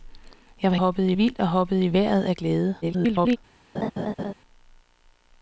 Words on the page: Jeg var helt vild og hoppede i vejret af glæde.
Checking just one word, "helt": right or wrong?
wrong